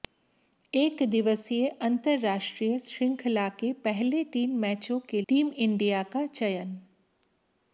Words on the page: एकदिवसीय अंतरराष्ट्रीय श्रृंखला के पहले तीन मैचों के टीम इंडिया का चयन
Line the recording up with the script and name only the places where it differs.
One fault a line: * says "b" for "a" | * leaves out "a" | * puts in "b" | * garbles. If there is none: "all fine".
all fine